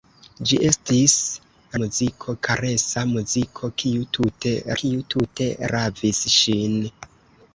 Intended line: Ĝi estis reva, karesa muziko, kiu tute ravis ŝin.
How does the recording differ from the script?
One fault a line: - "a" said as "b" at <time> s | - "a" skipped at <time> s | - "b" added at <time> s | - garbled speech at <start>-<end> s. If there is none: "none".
- "reva" said as "muziko" at 1.8 s
- "kiu tute" added at 4.8 s